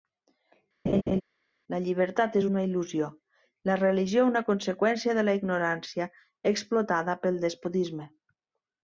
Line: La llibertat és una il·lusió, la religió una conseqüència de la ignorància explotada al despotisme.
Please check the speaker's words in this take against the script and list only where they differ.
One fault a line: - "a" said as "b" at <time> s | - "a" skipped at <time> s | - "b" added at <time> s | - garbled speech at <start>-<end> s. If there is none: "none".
- "al" said as "pel" at 7.3 s